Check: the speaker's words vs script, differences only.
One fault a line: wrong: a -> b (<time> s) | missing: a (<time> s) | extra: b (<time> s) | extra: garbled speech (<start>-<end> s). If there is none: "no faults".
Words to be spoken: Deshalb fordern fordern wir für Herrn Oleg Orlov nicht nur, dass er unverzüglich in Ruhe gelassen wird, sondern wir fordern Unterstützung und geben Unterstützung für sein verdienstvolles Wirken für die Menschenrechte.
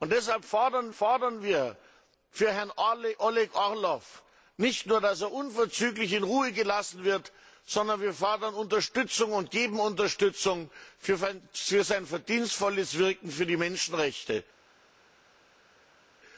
no faults